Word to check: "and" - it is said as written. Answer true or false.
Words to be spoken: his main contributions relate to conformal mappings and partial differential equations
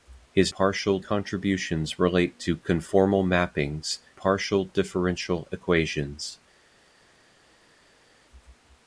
false